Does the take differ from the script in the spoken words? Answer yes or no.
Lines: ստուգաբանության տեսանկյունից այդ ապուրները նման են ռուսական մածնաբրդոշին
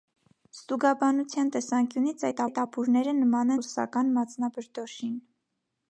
yes